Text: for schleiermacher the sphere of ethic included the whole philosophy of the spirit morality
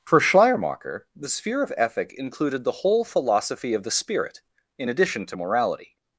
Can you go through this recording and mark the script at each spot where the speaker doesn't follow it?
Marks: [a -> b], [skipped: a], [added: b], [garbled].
for schleiermacher the sphere of ethic included the whole philosophy of the spirit [added: in addition to] morality